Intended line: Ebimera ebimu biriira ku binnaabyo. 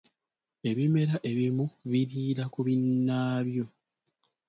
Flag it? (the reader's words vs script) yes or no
no